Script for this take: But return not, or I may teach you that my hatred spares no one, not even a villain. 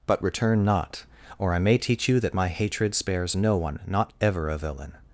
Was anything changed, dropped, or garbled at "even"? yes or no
yes